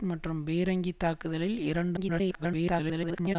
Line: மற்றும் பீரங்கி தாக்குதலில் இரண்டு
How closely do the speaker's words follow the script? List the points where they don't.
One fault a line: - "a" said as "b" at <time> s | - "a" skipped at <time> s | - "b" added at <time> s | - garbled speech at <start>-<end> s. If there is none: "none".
- garbled speech at 2.0-3.4 s